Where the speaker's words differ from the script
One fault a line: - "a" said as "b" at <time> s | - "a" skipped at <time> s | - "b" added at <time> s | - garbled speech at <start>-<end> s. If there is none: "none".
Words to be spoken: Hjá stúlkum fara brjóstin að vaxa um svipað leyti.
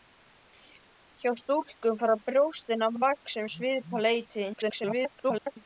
- "að" added at 2.9 s
- garbled speech at 4.5-5.6 s